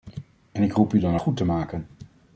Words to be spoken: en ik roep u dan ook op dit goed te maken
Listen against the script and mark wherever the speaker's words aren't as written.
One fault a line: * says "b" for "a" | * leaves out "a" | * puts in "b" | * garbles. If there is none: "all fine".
* leaves out "ook op dit"